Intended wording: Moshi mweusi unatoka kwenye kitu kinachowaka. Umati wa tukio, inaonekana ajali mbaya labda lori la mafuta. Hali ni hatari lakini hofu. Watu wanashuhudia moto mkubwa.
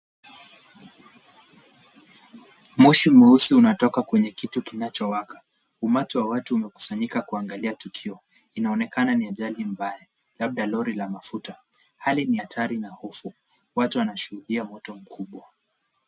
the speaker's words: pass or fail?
fail